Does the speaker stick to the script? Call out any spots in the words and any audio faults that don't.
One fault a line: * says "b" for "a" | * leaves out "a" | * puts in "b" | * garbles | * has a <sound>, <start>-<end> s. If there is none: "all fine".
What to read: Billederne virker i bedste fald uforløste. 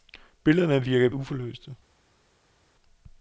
* leaves out "bedste fald"